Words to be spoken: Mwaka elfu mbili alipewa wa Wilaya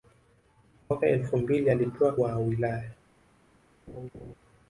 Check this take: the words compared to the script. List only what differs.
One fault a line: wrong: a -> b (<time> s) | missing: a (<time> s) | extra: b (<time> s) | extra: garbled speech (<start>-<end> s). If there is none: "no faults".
no faults